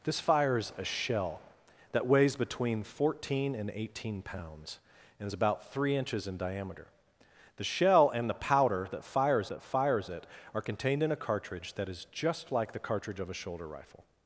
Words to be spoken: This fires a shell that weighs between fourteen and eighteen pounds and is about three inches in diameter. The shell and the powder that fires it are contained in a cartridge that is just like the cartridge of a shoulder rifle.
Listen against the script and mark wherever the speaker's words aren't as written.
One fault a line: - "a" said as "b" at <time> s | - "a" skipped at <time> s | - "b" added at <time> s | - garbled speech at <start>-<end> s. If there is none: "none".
- "that fires" added at 9.5 s